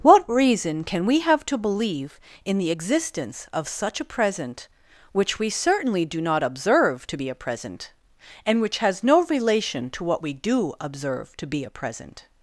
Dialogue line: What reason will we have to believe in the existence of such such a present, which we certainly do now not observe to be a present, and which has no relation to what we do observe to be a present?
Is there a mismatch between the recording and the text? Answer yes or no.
yes